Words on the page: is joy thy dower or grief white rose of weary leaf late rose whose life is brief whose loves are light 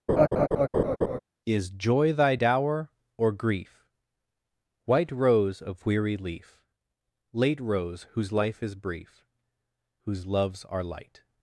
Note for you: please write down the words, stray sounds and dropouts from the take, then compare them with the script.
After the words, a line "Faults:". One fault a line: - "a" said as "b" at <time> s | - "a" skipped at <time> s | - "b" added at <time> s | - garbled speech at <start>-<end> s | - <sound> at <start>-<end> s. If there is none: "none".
is joy thy dower or grief white rose of weary leaf late rose whose life is brief whose loves are light
Faults:
- laugh at 0.1-1.2 s